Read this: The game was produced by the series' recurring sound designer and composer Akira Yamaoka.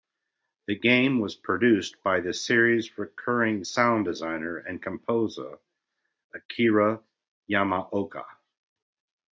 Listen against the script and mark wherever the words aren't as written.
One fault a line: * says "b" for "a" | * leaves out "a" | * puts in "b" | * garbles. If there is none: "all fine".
all fine